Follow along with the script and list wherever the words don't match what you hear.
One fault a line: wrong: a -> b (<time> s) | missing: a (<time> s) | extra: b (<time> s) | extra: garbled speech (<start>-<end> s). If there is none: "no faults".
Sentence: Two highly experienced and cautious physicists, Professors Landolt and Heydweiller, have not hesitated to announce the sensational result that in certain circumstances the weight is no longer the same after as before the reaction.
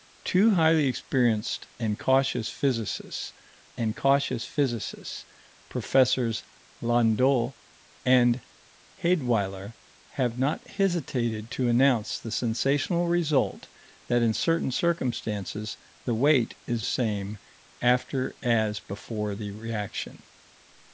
extra: and cautious physicists (3.7 s)
missing: no longer the (16.9 s)